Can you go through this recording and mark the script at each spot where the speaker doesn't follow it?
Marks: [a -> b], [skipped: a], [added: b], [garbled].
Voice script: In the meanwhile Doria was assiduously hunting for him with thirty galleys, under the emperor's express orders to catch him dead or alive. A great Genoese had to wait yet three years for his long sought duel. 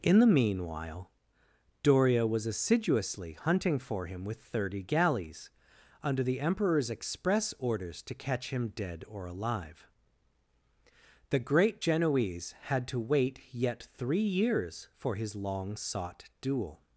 In the meanwhile Doria was assiduously hunting for him with thirty galleys, under the emperor's express orders to catch him dead or alive. [A -> The] great Genoese had to wait yet three years for his long sought duel.